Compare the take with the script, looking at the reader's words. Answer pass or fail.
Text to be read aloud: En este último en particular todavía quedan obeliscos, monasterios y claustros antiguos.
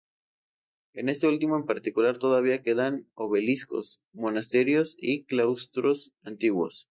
pass